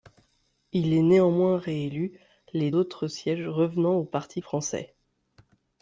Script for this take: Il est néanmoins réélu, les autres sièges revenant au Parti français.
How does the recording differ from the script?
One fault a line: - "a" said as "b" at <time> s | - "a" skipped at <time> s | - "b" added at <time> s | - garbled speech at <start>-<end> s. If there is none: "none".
none